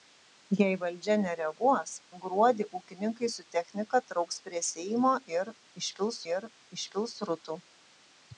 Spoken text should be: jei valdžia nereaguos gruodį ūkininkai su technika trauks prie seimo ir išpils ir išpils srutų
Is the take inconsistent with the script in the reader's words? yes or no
no